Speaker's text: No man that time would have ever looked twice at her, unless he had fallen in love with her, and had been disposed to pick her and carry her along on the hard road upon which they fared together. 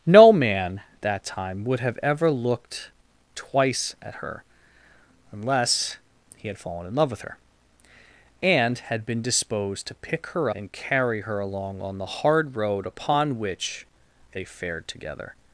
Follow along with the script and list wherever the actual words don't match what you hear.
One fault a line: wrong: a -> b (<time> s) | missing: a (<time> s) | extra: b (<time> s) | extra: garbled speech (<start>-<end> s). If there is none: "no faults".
no faults